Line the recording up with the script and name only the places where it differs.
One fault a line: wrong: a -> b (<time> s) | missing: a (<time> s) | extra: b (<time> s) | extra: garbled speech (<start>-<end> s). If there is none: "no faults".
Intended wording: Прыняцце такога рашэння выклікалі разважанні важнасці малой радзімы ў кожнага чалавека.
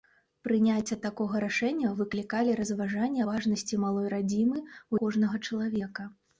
no faults